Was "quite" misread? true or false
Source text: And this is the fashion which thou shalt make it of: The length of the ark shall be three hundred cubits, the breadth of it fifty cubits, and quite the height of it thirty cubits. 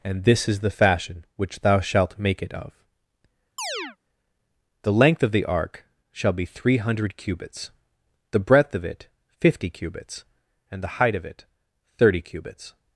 true